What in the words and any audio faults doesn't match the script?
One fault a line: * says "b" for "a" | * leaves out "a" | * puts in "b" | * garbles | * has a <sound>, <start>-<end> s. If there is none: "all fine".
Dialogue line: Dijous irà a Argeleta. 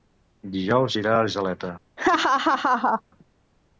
* has a laugh, 2.0-3.0 s